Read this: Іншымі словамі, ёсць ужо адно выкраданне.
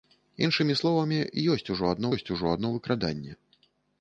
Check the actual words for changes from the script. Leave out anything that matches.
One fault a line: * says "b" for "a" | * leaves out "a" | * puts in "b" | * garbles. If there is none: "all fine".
* puts in "ёсць ужо адно"